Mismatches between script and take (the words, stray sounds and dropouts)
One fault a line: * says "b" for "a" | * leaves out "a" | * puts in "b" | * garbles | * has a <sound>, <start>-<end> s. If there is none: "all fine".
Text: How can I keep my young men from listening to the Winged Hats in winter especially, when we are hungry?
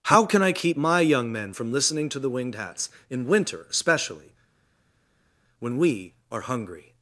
all fine